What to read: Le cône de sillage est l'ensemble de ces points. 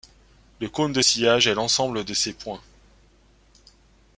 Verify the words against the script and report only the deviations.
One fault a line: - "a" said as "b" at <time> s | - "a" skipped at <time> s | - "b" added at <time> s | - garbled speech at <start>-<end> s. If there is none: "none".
none